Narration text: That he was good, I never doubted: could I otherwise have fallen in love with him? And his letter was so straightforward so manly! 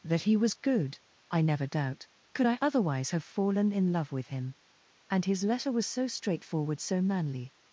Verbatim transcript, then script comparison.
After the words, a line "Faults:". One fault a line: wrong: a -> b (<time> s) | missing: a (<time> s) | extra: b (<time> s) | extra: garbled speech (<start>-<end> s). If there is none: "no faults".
That he was good, I never doubt: could I otherwise have fallen in love with him? And his letter was so straightforward so manly!
Faults:
wrong: doubted -> doubt (1.7 s)